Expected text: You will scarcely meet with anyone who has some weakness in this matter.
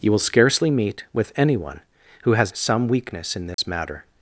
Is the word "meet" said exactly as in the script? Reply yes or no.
yes